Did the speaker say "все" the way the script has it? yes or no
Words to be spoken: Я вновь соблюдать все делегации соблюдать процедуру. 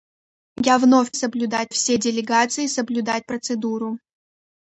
yes